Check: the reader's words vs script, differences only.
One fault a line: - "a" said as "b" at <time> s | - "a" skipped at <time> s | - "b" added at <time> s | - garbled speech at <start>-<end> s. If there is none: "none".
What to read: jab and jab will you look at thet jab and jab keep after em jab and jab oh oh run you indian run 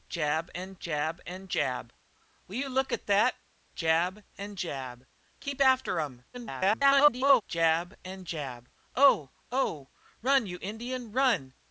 - "and jab" added at 1.3 s
- garbled speech at 6.3-7.4 s